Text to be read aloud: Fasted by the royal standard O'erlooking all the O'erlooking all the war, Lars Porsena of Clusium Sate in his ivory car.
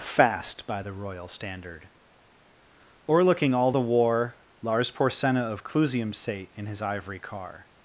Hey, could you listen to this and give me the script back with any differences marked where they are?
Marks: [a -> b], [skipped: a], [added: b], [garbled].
[Fasted -> Fast] by the royal standard O'erlooking all the [skipped: O'erlooking all the] war, Lars Porsena of Clusium Sate in his ivory car.